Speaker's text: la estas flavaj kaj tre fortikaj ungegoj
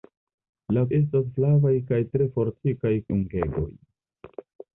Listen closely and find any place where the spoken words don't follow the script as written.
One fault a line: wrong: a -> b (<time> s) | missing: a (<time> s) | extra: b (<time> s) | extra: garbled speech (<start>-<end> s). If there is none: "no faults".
no faults